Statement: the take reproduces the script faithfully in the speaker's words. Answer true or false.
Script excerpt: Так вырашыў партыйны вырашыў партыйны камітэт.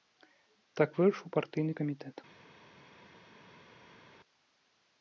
false